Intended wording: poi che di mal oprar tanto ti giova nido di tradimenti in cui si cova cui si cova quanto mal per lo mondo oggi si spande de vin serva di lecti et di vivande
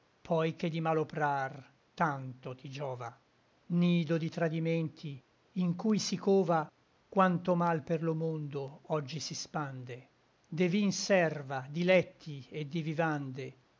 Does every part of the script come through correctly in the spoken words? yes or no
no